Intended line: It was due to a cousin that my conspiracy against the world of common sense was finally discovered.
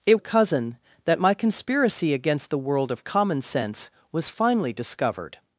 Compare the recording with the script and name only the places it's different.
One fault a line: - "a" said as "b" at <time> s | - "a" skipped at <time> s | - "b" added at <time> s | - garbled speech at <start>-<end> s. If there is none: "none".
- "was due to" skipped at 0.2 s